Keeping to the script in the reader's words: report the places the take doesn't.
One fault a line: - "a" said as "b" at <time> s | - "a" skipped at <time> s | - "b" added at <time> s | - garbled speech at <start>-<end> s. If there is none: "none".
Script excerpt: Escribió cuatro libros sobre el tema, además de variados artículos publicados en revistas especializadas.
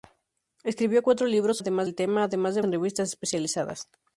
- "sobre" said as "además" at 1.6 s
- "variados artículos publicados" skipped at 2.6 s